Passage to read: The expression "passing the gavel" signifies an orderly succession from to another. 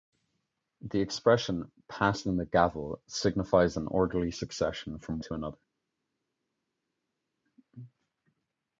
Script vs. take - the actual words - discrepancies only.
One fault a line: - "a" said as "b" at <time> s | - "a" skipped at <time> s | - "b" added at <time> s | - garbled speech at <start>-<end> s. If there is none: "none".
none